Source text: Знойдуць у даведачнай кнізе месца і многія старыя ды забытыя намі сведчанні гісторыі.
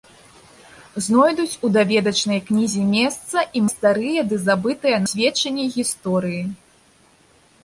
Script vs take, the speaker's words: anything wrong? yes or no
yes